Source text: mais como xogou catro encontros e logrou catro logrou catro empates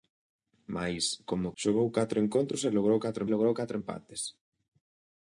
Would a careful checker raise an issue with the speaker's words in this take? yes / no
no